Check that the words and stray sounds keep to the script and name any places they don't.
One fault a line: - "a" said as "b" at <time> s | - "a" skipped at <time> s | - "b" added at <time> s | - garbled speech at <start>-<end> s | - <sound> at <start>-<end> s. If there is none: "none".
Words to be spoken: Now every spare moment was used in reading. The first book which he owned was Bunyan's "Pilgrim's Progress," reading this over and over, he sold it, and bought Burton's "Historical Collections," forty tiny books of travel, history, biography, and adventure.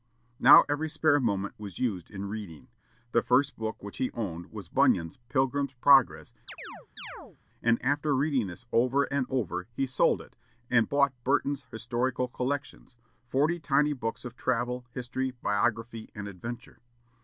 - chirp at 6.5-7.4 s
- "and after" added at 7.6 s